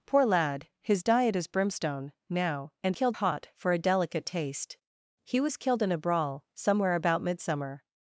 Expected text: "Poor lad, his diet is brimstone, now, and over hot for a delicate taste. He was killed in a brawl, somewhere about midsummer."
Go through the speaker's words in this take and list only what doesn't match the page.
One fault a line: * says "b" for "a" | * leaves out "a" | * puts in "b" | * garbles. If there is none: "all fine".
* says "killed" for "over"